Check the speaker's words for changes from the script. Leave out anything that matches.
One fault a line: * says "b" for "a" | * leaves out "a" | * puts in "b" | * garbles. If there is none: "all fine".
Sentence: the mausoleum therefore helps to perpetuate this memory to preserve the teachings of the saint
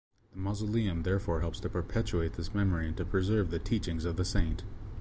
* puts in "and"